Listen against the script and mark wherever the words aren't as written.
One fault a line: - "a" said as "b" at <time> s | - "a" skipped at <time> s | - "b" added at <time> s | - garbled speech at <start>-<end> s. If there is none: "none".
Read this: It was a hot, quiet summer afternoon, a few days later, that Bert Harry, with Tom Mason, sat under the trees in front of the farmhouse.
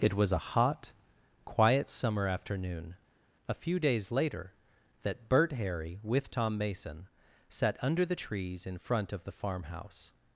none